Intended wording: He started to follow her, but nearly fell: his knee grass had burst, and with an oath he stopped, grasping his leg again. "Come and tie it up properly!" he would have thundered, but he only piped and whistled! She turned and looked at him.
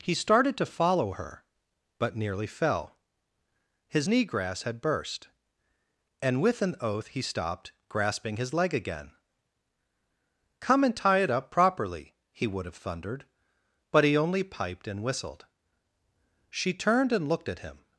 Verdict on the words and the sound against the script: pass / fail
pass